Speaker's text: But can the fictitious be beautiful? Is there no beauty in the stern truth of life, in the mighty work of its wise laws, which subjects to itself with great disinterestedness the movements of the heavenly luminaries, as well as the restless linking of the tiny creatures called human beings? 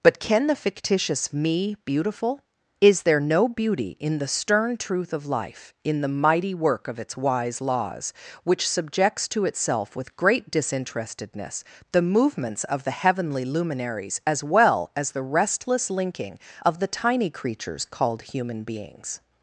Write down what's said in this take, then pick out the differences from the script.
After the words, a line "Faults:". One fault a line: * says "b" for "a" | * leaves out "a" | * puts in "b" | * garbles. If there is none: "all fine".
But can the fictitious me beautiful? Is there no beauty in the stern truth of life, in the mighty work of its wise laws, which subjects to itself with great disinterestedness the movements of the heavenly luminaries, as well as the restless linking of the tiny creatures called human beings?
Faults:
* says "me" for "be"